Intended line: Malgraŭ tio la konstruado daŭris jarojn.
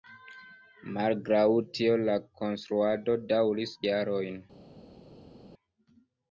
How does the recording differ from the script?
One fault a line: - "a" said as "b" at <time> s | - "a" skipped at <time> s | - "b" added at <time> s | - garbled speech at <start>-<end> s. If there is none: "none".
none